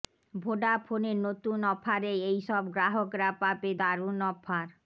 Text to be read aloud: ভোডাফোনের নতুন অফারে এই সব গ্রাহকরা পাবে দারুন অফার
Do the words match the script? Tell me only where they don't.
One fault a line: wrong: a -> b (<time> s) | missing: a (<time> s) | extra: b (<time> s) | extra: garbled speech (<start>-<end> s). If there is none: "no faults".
no faults